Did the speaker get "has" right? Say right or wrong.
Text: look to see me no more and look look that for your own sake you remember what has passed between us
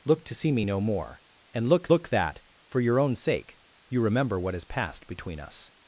right